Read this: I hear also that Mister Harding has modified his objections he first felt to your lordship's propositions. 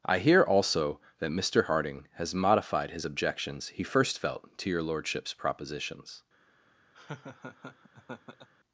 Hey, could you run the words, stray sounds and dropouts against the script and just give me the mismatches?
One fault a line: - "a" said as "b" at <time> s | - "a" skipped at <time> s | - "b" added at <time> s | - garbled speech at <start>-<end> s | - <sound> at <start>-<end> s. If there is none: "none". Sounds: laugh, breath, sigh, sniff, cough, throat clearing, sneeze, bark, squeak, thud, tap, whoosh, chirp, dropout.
- laugh at 6.9-8.5 s